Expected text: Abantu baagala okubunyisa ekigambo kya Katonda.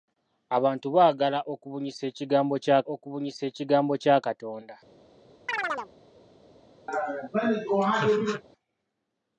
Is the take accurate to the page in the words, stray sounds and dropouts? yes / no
no